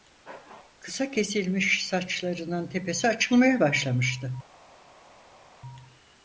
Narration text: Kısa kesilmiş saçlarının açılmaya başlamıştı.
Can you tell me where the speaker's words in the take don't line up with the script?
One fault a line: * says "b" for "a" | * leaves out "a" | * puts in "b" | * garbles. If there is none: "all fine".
* puts in "tepesi"